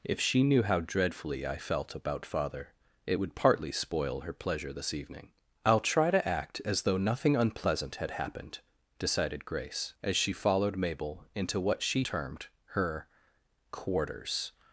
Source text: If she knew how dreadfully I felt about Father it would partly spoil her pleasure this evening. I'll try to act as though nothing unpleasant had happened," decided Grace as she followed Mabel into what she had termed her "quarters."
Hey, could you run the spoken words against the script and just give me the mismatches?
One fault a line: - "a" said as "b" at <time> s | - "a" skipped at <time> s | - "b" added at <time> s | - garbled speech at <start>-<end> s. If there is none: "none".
- "had" skipped at 12.0 s